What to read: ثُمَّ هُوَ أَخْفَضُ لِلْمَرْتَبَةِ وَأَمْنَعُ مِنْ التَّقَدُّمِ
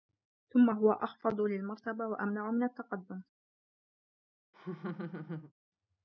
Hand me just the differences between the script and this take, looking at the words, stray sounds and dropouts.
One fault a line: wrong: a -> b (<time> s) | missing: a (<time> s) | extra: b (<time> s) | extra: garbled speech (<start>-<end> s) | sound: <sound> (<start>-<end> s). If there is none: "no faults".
sound: laugh (4.5-5.5 s)